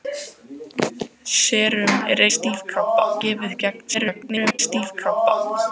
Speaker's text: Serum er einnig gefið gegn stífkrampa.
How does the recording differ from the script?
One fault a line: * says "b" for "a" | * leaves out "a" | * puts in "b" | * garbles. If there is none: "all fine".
* says "stífkrampa" for "einnig"
* garbles